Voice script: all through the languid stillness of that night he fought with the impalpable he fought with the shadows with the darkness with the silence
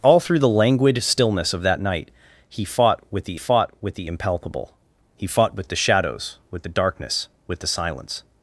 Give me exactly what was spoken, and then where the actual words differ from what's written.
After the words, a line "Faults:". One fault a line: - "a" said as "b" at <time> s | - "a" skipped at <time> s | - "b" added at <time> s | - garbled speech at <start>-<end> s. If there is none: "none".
all through the languid stillness of that night he fought with the fought with the impalpable he fought with the shadows with the darkness with the silence
Faults:
- "fought with the" added at 3.4 s